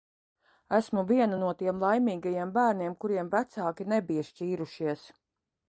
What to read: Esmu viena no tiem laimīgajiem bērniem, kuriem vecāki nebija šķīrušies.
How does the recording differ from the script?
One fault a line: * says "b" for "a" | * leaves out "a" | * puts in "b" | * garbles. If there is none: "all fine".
all fine